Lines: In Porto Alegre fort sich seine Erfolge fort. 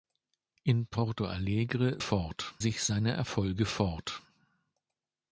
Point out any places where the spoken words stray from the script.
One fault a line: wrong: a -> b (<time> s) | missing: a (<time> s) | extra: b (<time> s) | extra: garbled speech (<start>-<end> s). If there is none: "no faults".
no faults